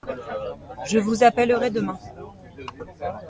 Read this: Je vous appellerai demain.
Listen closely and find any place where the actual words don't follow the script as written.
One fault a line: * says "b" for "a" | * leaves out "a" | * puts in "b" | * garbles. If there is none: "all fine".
all fine